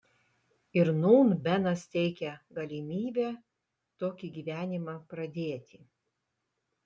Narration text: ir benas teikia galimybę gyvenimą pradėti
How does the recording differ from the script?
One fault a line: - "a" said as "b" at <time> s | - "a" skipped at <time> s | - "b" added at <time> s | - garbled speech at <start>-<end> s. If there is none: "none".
- "nūn" added at 1.0 s
- "tokį" added at 4.0 s